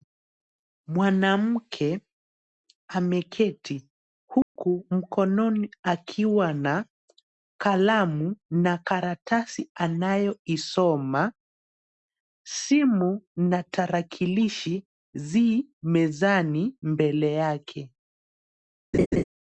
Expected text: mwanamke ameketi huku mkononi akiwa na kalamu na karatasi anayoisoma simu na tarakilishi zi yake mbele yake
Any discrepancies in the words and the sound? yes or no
yes